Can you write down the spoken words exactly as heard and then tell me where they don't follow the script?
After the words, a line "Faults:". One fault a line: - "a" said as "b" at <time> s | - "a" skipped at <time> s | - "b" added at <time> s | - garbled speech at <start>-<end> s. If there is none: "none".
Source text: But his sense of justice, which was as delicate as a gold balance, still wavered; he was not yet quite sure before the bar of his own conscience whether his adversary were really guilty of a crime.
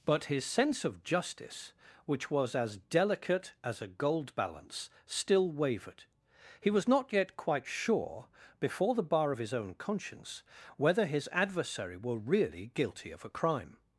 But his sense of justice, which was as delicate as a gold balance, still wavered; he was not yet quite sure before the bar of his own conscience whether his adversary were really guilty of a crime.
Faults:
none